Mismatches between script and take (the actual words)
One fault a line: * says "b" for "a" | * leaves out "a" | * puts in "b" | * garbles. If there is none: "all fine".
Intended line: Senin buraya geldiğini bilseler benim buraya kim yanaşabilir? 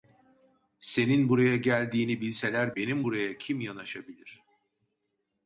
all fine